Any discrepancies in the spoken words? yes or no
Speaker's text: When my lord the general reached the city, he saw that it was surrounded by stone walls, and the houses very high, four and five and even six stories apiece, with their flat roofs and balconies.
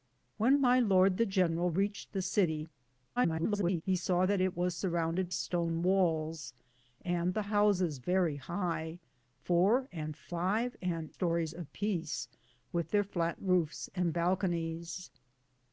yes